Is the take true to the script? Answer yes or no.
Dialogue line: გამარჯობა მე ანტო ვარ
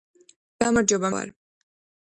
no